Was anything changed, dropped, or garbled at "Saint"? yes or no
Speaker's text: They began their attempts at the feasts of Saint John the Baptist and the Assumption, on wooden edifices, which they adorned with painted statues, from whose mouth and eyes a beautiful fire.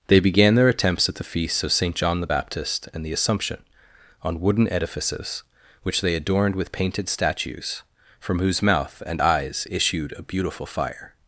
no